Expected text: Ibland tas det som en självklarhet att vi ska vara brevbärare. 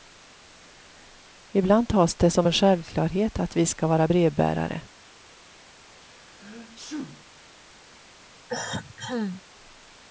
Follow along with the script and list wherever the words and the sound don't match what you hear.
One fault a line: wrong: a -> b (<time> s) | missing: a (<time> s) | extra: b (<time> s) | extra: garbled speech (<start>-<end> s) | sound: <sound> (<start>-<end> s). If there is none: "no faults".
sound: sneeze (5.9-7.3 s)
sound: cough (8.5-9.4 s)